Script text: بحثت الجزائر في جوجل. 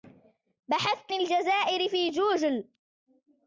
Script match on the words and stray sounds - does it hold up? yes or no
yes